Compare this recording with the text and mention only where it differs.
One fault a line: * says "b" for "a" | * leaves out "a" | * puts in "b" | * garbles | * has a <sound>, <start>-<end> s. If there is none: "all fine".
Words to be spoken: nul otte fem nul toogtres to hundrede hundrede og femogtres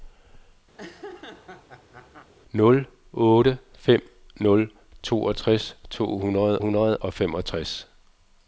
* has a laugh, 0.8-2.3 s